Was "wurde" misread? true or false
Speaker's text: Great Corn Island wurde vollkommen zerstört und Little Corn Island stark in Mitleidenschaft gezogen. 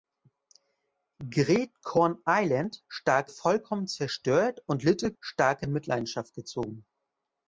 true